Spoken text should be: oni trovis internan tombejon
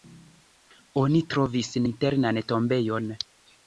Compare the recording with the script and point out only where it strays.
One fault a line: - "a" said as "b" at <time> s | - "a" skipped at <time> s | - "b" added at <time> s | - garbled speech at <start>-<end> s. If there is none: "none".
none